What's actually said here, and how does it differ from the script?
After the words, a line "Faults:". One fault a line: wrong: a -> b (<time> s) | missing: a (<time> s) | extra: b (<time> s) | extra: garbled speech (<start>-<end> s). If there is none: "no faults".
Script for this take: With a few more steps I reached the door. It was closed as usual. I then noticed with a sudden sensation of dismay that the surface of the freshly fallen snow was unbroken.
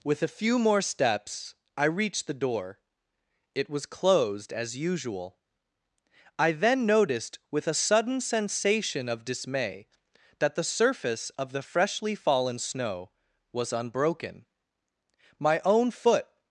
With a few more steps I reached the door. It was closed as usual. I then noticed with a sudden sensation of dismay that the surface of the freshly fallen snow was unbroken. My own foot
Faults:
extra: My own foot (15.4 s)